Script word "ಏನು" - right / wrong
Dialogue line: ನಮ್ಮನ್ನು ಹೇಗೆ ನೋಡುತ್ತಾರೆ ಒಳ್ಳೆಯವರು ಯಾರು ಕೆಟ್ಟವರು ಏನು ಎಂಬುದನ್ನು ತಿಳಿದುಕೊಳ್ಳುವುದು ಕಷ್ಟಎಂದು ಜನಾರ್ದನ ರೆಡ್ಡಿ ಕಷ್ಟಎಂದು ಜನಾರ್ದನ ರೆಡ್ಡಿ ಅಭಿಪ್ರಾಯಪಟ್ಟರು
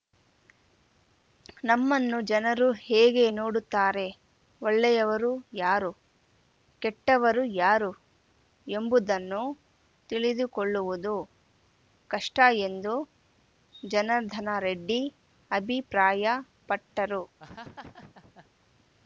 wrong